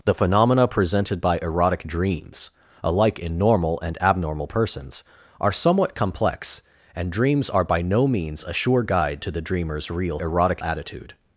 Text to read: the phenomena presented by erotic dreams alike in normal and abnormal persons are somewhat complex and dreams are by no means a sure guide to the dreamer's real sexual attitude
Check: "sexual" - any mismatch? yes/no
yes